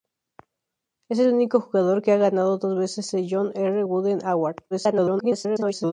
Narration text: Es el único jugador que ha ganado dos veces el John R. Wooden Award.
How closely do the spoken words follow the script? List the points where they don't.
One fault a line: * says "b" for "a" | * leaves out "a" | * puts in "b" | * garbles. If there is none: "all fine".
* garbles